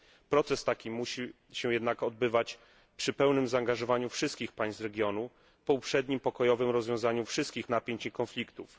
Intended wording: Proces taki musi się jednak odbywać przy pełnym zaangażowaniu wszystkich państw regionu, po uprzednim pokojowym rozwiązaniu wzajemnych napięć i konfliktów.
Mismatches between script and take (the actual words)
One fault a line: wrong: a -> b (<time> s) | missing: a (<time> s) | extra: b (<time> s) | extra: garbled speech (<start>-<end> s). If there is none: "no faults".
wrong: wzajemnych -> wszystkich (7.2 s)